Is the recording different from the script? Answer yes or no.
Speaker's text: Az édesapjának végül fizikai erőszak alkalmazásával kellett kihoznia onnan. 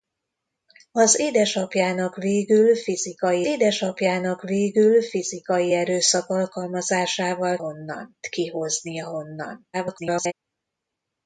yes